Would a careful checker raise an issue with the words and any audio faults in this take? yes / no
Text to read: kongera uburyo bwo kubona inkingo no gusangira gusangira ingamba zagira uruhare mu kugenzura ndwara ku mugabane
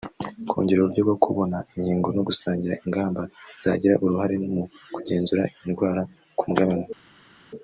yes